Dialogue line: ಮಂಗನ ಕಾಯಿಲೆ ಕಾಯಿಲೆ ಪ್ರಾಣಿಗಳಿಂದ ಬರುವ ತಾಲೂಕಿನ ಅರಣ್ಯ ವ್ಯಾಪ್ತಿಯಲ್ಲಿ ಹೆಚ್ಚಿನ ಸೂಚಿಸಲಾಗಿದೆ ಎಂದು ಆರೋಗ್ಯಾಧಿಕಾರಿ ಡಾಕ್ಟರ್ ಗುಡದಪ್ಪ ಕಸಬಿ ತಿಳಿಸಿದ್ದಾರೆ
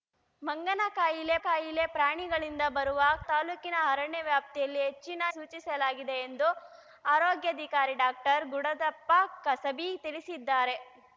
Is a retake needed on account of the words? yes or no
no